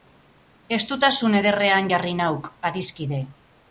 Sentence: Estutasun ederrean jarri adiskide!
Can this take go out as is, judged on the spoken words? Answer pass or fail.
fail